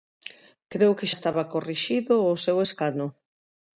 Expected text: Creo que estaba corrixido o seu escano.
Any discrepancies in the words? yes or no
no